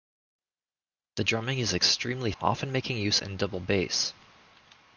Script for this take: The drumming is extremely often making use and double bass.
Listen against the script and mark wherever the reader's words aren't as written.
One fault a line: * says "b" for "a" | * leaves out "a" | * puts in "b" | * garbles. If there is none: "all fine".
all fine